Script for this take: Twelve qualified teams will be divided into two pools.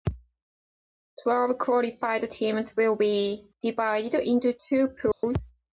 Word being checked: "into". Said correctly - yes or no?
yes